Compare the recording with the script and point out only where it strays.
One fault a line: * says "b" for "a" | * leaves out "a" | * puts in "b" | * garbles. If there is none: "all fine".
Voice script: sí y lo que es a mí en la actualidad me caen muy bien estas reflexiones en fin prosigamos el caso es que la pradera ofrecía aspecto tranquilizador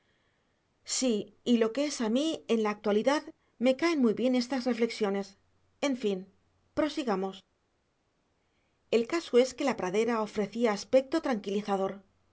all fine